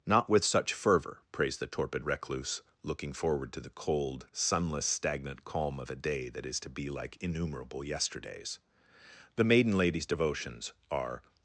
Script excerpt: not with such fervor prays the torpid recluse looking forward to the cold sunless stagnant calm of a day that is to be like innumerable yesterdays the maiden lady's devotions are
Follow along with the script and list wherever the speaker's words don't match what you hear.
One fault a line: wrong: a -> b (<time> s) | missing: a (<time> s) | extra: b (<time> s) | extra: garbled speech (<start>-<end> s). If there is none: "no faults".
no faults